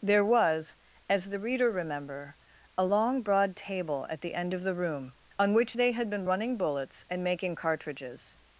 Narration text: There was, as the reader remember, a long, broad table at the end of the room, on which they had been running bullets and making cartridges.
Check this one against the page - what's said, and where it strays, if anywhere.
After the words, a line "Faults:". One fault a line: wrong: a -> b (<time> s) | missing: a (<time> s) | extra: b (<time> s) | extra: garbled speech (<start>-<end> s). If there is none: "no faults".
There was, as the reader remember, a long, broad table at the end of the room, on which they had been running bullets and making cartridges.
Faults:
no faults